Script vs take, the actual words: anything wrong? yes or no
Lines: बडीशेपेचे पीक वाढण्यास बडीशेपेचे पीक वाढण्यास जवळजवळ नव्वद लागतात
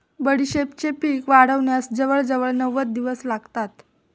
yes